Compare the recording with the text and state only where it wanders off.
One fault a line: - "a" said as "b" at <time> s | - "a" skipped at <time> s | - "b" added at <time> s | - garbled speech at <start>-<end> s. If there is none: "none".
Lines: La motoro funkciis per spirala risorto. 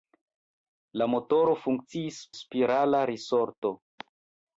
- "per" skipped at 2.2 s